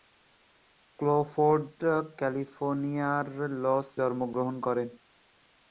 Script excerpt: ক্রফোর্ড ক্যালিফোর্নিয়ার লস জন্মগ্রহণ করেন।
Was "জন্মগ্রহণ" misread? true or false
false